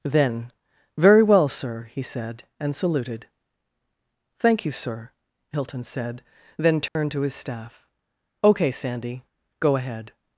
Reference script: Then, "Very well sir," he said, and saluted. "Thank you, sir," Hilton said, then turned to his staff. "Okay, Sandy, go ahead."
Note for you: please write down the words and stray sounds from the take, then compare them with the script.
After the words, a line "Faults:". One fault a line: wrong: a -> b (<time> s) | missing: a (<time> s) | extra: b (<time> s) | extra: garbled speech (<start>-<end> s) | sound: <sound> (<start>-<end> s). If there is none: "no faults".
Then, "Very well sir," he said, and saluted. "Thank you, sir," Hilton said, then turned to his staff. "Okay, Sandy, go ahead."
Faults:
sound: dropout (6.9-7.0 s)